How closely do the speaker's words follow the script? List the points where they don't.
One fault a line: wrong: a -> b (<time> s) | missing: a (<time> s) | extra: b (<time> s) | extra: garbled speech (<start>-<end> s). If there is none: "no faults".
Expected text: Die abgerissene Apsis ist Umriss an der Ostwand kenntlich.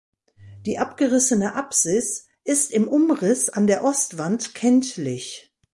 extra: im (2.7 s)